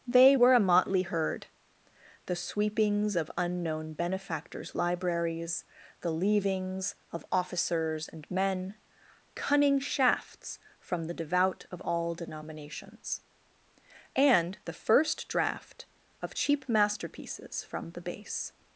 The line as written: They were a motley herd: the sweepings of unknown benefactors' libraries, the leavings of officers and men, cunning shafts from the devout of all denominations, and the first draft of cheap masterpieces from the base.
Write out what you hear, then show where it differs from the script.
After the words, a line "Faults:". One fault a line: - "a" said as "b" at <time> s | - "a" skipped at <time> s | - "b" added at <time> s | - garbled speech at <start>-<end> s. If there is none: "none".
They were a motley herd: the sweepings of unknown benefactors' libraries, the leavings of officers and men, cunning shafts from the devout of all denominations, and the first draft of cheap masterpieces from the base.
Faults:
none